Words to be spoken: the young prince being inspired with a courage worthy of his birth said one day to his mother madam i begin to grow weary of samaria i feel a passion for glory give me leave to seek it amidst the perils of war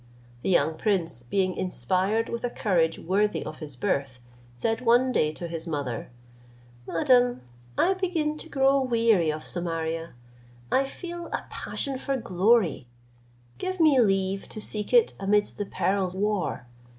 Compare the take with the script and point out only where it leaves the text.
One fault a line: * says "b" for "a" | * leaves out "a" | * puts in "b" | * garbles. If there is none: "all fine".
* leaves out "of"